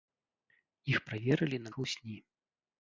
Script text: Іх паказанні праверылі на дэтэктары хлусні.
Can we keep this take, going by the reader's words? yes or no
no